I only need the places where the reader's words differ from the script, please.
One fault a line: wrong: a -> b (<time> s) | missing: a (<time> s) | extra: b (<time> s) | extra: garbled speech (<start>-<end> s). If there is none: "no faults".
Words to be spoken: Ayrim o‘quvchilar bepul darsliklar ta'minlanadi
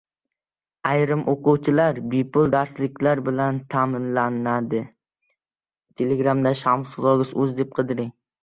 extra: bilan (3.3 s)